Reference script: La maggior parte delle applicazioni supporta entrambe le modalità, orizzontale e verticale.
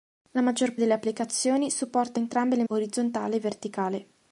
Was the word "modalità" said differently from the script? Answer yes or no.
yes